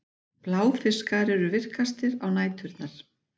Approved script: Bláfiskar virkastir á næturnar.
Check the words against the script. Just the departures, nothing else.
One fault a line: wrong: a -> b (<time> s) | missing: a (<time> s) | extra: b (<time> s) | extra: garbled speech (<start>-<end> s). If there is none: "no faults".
extra: eru (1.4 s)